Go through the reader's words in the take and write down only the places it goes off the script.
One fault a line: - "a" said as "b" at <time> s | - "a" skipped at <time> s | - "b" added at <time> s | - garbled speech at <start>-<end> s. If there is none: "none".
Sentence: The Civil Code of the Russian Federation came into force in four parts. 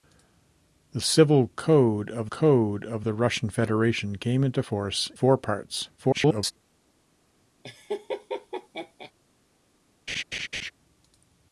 - "Code of" added at 2.3 s
- "in" skipped at 5.1 s
- garbled speech at 6.0-6.5 s